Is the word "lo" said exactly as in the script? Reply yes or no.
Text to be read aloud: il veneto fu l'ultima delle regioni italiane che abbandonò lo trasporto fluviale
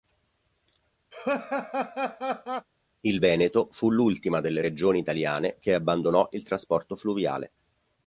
no